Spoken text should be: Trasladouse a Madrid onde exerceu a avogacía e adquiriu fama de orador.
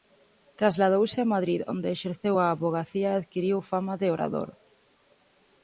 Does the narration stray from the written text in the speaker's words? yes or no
no